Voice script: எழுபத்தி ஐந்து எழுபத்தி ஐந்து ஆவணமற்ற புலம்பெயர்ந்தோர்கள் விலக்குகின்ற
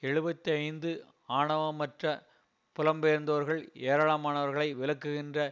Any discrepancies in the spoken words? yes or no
yes